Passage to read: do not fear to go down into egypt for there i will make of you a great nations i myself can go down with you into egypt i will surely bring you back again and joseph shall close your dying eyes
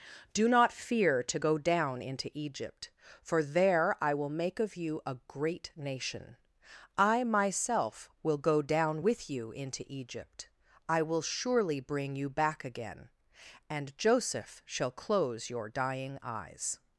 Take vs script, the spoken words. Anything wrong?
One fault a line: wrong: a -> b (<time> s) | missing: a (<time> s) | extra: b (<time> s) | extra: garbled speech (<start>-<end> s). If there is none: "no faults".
wrong: nations -> nation (5.7 s)
wrong: can -> will (8.2 s)